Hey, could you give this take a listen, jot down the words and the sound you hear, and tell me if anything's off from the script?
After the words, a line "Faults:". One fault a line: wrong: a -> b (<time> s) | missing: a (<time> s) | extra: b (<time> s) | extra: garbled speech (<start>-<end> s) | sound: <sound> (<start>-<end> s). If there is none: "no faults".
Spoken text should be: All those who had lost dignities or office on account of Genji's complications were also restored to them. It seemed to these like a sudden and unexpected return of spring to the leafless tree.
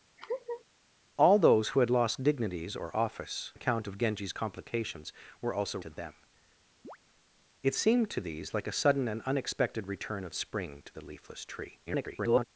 All those who had lost dignities or office account of Genji's complications were also to them. It seemed to these like a sudden and unexpected return of spring to the leafless tree. [garbled]
Faults:
sound: laugh (0.2-0.6 s)
missing: on (3.5 s)
missing: restored (5.8 s)
sound: chirp (6.8-7.0 s)
extra: garbled speech (11.9-12.5 s)